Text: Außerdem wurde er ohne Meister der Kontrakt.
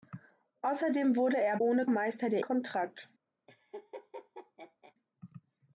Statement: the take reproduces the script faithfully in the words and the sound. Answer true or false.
false